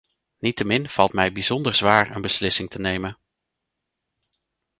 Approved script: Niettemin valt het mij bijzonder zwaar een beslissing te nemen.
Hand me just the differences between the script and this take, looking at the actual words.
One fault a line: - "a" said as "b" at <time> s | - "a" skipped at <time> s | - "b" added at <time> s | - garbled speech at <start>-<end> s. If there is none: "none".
- "het" skipped at 1.1 s